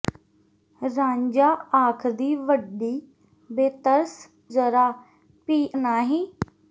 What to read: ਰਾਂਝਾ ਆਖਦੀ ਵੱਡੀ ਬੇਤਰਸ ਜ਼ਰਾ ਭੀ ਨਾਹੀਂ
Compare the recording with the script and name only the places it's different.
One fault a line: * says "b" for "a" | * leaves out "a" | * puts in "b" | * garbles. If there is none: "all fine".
all fine